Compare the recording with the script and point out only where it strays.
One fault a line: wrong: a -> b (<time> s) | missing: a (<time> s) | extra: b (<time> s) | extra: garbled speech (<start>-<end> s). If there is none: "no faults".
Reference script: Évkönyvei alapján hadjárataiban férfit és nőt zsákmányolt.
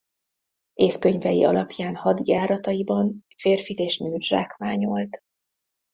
no faults